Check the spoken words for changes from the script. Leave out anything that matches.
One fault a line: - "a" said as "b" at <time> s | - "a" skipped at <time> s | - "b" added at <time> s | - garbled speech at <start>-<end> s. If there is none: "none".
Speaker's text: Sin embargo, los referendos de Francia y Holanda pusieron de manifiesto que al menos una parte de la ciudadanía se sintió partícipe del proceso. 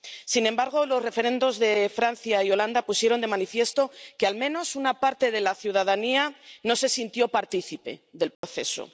- "no" added at 6.6 s